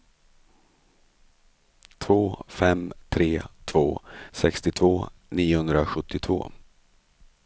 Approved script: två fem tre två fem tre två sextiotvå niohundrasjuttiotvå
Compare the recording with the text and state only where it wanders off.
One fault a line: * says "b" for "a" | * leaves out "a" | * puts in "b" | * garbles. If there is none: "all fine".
* leaves out "fem tre två"